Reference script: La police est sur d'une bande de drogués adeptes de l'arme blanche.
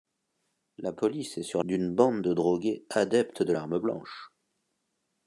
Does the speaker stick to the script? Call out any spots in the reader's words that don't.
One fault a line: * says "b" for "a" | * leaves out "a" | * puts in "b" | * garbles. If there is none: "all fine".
all fine